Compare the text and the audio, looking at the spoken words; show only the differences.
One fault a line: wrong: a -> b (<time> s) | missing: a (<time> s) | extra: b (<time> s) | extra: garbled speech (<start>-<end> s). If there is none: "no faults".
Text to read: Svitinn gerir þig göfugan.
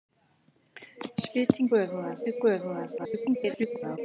wrong: gerir -> göfugan (1.7 s)
extra: garbled speech (3.0-4.0 s)